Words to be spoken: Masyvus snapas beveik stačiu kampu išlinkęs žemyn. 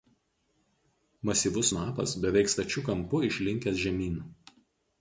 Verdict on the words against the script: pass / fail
pass